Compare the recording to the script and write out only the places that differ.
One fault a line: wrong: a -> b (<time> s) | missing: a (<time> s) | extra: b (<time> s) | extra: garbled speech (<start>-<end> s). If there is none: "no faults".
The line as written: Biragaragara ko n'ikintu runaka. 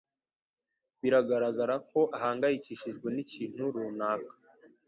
extra: ahangayikishijwe (2.2 s)